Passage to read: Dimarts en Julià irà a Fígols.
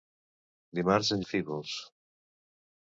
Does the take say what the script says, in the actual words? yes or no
no